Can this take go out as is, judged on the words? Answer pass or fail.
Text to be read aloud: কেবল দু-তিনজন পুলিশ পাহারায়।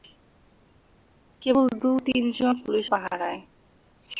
pass